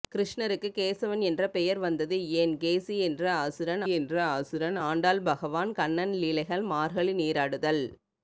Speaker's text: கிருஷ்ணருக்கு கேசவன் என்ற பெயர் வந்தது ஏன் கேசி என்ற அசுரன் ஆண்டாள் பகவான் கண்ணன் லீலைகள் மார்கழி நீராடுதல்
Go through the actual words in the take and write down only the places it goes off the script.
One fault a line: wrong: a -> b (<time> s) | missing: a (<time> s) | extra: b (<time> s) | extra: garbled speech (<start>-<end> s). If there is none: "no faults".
extra: என்ற அசுரன் (3.9 s)